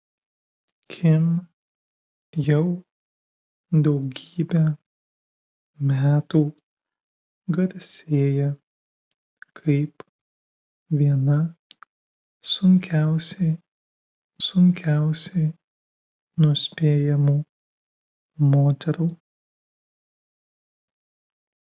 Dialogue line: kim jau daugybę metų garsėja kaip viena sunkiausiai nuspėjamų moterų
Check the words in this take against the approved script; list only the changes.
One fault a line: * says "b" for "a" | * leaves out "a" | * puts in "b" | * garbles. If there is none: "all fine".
* puts in "sunkiausiai"